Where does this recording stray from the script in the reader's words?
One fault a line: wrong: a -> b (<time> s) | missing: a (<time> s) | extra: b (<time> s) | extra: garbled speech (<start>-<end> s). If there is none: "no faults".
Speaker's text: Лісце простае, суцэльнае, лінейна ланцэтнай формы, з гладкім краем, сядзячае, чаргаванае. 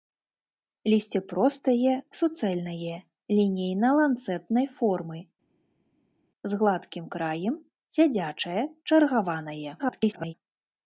extra: garbled speech (9.8-10.3 s)